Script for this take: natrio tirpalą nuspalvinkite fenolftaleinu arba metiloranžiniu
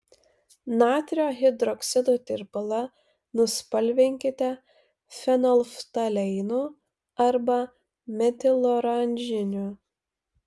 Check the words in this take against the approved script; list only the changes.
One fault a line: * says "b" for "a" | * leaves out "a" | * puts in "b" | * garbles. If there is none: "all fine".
* puts in "hidroksido"